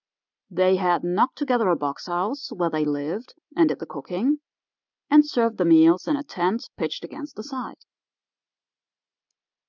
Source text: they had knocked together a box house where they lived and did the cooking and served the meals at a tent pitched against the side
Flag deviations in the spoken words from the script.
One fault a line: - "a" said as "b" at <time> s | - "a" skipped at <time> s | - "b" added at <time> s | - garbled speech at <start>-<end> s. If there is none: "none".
- "at" said as "in" at 6.1 s